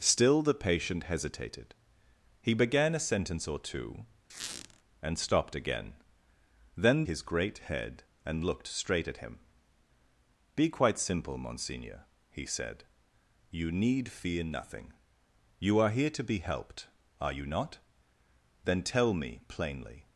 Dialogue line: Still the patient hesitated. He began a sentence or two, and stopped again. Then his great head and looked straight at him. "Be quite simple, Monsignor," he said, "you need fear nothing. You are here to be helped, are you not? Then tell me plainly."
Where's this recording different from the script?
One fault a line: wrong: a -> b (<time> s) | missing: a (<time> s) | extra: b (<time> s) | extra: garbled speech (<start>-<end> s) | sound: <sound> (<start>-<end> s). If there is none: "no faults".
sound: squeak (4.3-4.8 s)